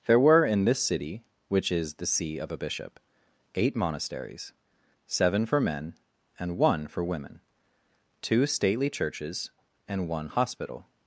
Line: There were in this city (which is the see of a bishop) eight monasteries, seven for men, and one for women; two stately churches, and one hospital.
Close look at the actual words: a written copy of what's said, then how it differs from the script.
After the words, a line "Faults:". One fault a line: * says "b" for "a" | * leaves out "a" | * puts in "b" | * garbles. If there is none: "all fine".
There were in this city (which is the see of a bishop) eight monasteries, seven for men, and one for women; two stately churches, and one hospital.
Faults:
all fine